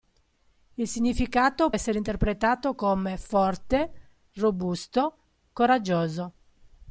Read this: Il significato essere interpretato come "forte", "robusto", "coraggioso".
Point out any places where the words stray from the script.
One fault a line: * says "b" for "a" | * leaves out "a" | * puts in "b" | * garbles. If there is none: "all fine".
all fine